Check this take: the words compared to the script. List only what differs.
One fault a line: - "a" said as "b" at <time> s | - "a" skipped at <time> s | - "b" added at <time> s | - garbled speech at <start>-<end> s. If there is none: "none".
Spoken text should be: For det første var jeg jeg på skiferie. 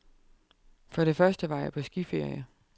- "jeg" skipped at 1.7 s